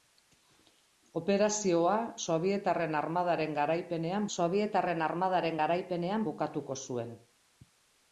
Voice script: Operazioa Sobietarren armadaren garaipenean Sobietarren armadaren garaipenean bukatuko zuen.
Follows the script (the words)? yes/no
yes